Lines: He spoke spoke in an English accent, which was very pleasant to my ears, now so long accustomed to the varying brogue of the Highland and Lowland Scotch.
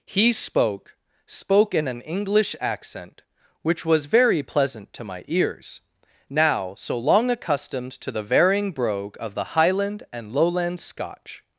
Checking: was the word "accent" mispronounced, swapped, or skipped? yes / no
no